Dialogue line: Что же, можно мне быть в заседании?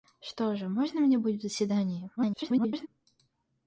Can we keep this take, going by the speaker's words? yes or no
no